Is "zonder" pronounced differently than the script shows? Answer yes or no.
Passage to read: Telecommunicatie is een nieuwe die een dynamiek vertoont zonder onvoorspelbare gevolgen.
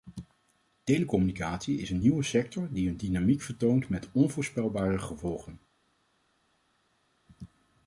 yes